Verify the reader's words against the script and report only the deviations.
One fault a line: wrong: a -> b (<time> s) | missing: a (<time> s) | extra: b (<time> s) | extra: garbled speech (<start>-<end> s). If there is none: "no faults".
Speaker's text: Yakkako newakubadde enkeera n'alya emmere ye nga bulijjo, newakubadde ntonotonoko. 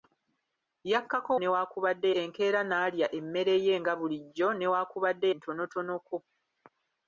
no faults